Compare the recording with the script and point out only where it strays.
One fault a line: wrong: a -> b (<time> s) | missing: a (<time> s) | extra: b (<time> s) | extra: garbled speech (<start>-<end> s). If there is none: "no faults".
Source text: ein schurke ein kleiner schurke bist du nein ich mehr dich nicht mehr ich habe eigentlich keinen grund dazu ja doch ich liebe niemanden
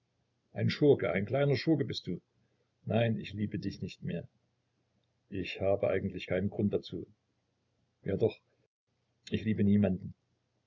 wrong: mehr -> liebe (3.3 s)